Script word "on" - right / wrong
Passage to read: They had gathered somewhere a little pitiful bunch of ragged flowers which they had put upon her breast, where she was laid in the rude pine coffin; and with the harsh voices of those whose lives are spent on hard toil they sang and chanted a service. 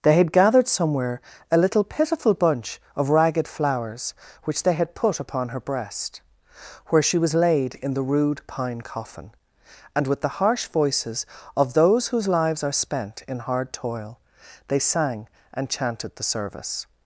wrong